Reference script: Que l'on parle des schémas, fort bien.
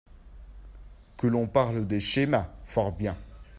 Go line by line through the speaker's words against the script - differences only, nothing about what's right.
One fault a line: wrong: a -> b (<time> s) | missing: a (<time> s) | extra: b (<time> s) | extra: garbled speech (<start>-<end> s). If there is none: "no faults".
no faults